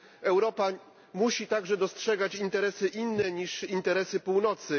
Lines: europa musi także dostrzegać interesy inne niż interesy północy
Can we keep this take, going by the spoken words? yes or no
yes